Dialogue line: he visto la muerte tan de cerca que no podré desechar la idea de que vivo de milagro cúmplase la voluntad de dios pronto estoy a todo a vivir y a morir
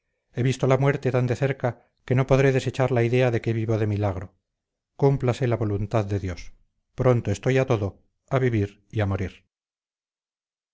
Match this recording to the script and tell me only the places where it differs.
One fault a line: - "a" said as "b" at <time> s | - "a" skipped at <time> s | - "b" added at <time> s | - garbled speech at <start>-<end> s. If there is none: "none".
none